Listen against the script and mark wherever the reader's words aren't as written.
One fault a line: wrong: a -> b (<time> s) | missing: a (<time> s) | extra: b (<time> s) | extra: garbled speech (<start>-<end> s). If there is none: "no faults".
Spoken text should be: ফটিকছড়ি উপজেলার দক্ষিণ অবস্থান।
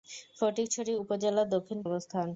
no faults